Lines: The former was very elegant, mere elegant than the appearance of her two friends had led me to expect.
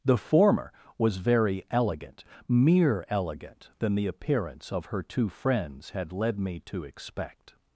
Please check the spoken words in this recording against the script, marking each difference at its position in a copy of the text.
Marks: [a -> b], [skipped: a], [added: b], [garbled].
The former was very elegant, mere elegant than the appearance of her two friends had led me to expect.